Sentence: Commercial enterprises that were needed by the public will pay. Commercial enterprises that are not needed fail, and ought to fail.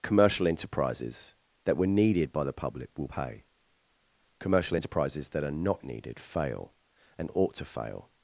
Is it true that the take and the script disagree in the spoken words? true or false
false